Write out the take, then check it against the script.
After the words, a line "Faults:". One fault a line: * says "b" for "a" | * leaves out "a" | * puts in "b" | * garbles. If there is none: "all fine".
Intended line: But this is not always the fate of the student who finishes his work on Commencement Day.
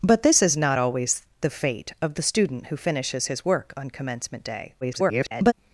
But this is not always the fate of the student who finishes his work on Commencement Day. [garbled]
Faults:
* garbles